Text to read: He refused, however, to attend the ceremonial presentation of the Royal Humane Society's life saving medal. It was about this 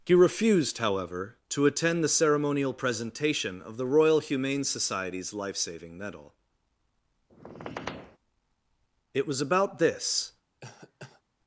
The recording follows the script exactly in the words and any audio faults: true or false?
false